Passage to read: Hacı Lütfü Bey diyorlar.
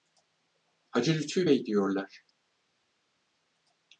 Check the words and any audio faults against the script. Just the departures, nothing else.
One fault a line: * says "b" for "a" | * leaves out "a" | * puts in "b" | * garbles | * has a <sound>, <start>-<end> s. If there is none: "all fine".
all fine